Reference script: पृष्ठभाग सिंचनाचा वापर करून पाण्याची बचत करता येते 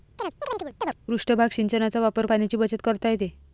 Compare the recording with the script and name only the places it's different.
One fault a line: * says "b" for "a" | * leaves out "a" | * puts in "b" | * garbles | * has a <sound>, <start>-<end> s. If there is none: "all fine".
* has a chirp, 0.2-0.9 s
* leaves out "करून"